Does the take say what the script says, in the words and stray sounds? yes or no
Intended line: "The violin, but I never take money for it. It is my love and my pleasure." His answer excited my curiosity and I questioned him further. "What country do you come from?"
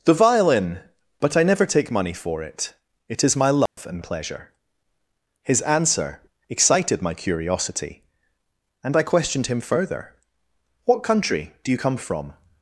no